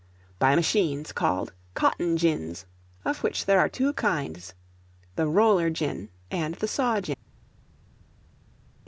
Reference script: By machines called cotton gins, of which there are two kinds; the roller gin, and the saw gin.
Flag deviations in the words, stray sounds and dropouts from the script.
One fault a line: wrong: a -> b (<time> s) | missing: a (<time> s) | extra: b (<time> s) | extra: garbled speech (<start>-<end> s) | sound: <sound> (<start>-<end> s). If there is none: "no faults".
no faults